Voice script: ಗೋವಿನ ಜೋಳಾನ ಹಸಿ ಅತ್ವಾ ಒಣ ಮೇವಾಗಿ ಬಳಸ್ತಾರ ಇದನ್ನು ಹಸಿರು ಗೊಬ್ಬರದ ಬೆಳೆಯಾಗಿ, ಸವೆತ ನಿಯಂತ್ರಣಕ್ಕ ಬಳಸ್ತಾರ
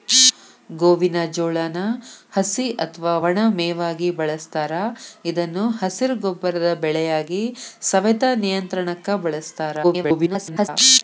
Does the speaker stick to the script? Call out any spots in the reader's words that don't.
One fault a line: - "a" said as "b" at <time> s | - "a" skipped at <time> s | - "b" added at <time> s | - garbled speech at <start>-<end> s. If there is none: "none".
- garbled speech at 9.8-10.7 s